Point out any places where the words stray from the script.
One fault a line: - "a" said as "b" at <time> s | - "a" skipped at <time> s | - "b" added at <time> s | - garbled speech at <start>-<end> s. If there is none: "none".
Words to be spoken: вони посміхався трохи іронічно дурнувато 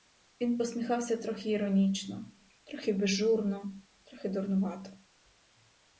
- "вони" said as "він" at 0.4 s
- "трохи безжурно трохи" added at 2.6 s